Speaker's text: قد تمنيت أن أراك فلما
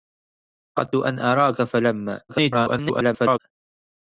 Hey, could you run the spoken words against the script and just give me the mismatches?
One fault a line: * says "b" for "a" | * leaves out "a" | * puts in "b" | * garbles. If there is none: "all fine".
* leaves out "تمنيت"
* garbles